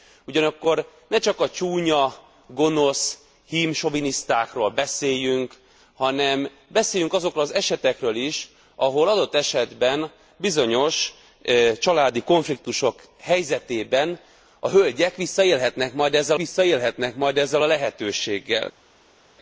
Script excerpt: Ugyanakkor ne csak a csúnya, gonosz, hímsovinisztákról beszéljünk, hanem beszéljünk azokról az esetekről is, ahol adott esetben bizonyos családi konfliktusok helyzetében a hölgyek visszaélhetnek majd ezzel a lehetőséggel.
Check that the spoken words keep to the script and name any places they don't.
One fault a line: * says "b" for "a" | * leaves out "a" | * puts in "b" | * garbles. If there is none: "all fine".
* puts in "visszaélhetnek majd ezzel"